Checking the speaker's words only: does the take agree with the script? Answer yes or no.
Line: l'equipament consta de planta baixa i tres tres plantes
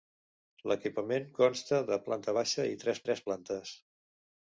yes